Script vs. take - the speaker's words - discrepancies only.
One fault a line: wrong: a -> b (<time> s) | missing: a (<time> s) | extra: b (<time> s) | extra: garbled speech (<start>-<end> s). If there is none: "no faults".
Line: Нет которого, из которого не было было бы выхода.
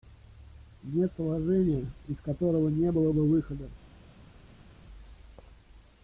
wrong: которого -> положения (1.2 s)
missing: было (3.1 s)